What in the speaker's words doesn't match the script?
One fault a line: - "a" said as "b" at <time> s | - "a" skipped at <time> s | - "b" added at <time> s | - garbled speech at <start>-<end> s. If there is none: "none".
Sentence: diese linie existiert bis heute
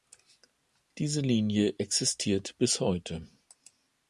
none